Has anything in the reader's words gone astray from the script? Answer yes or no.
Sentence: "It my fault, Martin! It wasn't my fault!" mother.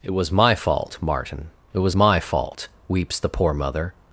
yes